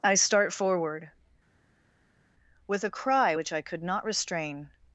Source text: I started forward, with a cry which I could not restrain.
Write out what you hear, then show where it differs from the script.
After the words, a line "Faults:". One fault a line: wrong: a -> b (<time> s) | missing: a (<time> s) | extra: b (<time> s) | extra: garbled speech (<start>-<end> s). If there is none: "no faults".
I start forward, with a cry which I could not restrain.
Faults:
wrong: started -> start (0.1 s)